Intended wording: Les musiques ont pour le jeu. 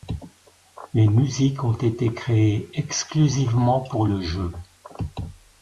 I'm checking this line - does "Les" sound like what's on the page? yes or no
yes